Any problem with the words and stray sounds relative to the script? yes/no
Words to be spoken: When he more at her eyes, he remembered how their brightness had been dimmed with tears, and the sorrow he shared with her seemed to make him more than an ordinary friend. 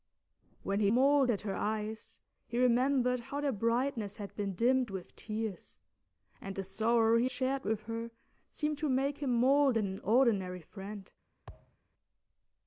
yes